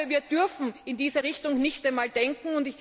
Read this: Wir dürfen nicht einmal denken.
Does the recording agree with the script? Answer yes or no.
no